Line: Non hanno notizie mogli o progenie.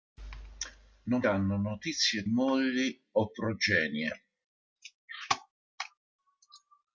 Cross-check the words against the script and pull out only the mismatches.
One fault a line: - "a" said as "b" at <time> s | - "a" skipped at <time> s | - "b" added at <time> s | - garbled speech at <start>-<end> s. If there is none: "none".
none